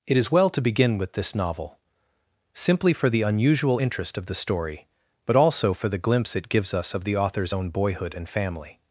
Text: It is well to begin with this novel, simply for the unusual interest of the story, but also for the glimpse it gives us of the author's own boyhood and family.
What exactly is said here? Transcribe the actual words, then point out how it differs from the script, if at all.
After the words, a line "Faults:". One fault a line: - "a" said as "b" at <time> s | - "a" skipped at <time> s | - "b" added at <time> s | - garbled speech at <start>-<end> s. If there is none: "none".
It is well to begin with this novel, simply for the unusual interest of the story, but also for the glimpse it gives us of the author's own boyhood and family.
Faults:
none